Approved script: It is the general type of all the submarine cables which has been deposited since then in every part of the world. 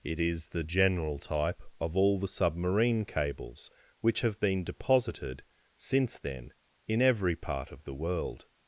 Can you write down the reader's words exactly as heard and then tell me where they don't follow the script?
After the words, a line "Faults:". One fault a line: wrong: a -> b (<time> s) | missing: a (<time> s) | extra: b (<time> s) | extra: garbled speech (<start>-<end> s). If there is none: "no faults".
It is the general type of all the submarine cables which have been deposited since then in every part of the world.
Faults:
wrong: has -> have (4.2 s)